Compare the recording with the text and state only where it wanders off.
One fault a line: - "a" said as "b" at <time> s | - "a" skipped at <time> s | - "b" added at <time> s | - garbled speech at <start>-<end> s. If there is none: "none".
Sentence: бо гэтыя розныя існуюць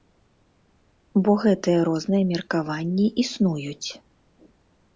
- "меркаванні" added at 2.3 s